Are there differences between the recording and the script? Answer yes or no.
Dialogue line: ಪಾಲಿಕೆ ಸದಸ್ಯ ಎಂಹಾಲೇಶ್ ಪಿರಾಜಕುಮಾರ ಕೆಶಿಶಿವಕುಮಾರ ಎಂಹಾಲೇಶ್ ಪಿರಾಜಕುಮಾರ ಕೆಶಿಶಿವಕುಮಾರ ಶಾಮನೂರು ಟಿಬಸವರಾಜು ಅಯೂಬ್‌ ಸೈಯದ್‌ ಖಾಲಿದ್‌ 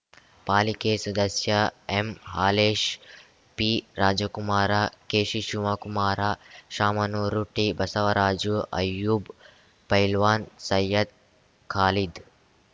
yes